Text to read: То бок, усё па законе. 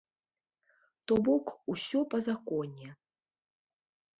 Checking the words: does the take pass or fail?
pass